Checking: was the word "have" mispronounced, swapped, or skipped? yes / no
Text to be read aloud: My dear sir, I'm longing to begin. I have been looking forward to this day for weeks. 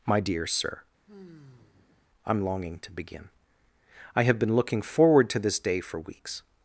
no